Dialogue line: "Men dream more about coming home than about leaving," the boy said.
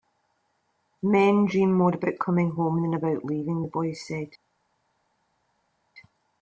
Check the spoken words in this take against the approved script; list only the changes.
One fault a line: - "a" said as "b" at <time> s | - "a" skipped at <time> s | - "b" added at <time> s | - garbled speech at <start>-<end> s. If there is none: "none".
none